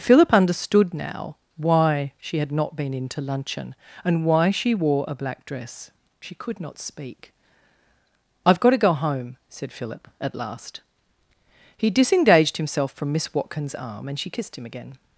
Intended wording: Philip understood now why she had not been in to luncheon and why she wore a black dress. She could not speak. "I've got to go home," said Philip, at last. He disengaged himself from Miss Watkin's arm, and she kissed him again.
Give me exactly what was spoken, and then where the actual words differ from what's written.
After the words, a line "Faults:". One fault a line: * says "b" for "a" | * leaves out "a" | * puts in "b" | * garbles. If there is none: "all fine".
Philip understood now why she had not been in to luncheon and why she wore a black dress. She could not speak. "I've got to go home," said Philip, at last. He disengaged himself from Miss Watkin's arm, and she kissed him again.
Faults:
all fine